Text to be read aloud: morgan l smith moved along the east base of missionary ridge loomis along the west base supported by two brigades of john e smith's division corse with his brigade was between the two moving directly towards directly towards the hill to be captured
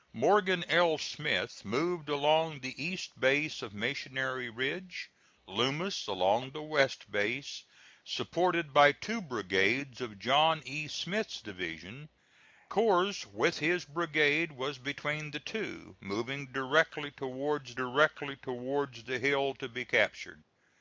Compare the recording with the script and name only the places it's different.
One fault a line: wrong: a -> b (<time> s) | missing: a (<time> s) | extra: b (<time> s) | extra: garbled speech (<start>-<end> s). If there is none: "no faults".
no faults